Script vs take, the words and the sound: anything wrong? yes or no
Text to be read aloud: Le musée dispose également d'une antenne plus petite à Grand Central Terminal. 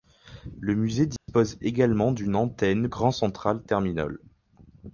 yes